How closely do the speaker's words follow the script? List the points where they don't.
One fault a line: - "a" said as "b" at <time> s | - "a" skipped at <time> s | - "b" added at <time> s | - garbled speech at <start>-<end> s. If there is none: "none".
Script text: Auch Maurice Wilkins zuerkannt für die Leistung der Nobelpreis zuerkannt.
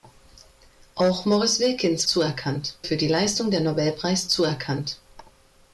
none